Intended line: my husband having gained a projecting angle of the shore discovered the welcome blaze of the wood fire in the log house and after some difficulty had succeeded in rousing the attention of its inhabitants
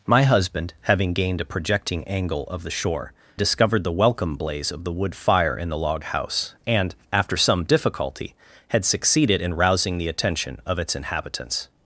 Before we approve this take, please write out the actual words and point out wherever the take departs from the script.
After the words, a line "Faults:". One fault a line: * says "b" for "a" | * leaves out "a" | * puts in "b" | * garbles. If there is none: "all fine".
my husband having gained a projecting angle of the shore discovered the welcome blaze of the wood fire in the log house and after some difficulty had succeeded in rousing the attention of its inhabitants
Faults:
all fine